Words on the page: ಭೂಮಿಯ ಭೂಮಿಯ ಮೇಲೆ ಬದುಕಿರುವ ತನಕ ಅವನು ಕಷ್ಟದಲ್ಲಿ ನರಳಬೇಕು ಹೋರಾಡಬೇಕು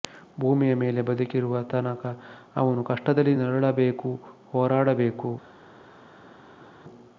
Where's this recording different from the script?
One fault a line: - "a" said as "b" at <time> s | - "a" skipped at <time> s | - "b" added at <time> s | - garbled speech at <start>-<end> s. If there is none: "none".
- "ಭೂಮಿಯ" skipped at 0.7 s